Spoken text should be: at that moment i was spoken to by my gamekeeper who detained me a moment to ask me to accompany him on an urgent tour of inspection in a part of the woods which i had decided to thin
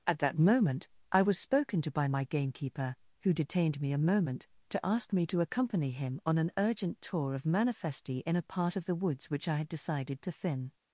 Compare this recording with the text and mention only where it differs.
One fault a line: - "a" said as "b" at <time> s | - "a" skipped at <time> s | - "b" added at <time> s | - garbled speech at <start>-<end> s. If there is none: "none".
- "inspection" said as "manifesti" at 7.5 s